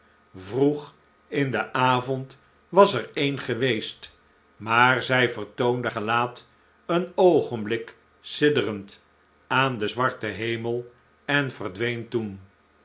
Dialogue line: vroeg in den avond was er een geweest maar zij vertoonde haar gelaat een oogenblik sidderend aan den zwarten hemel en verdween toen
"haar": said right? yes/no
no